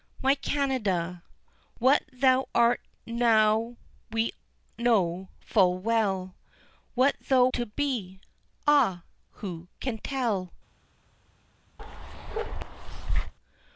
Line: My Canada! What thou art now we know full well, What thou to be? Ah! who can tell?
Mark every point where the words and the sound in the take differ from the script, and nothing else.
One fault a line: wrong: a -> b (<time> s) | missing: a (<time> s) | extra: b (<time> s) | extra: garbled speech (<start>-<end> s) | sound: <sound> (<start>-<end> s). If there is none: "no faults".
sound: bark (11.8-13.3 s)